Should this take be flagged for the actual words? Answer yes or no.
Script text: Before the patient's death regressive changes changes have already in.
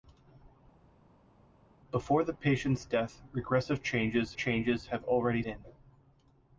no